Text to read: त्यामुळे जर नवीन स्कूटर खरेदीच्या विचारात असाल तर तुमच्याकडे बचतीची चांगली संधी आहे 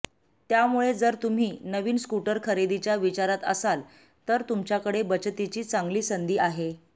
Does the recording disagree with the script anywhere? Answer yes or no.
yes